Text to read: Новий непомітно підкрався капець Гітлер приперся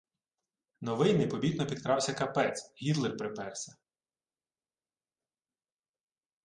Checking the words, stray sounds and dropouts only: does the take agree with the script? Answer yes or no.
yes